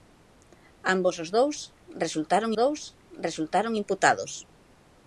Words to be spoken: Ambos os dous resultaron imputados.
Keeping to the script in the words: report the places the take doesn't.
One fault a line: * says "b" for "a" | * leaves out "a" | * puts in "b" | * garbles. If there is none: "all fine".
* puts in "dous resultaron"